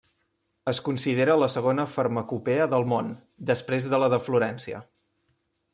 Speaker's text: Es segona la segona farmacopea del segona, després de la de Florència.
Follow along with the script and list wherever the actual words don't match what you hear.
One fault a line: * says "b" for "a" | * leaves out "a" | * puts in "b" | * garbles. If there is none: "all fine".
* says "considera" for "segona"
* says "món" for "segona"